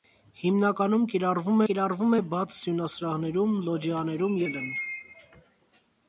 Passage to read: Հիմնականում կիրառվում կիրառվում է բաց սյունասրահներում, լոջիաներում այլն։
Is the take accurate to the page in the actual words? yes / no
yes